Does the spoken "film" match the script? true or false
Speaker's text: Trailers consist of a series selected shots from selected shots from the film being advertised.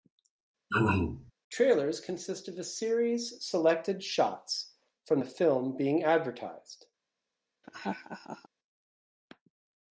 true